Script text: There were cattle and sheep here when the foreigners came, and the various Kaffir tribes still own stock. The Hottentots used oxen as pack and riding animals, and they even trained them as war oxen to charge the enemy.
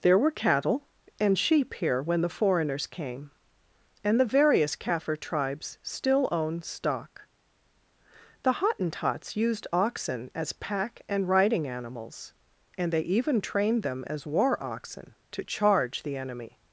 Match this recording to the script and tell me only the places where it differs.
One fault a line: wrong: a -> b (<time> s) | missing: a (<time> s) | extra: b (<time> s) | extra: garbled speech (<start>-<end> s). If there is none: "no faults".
no faults